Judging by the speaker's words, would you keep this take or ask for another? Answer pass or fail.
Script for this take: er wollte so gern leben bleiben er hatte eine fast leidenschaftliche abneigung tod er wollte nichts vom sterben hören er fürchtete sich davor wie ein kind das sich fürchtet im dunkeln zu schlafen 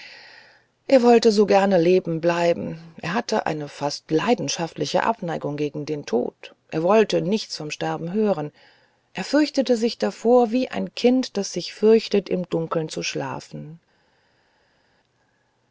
fail